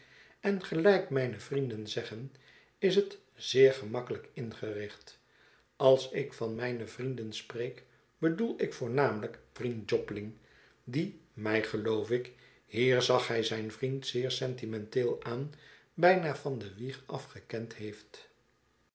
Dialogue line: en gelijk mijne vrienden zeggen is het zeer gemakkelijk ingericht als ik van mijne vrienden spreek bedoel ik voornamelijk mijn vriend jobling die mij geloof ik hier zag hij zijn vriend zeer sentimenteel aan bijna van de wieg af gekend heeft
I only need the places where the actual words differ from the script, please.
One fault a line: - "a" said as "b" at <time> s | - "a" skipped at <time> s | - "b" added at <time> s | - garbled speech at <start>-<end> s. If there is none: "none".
- "mijn" skipped at 9.4 s